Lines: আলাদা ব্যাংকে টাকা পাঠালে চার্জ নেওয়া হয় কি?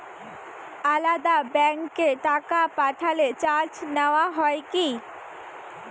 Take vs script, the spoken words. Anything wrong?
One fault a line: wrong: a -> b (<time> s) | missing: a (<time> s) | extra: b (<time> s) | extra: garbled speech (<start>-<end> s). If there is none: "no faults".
no faults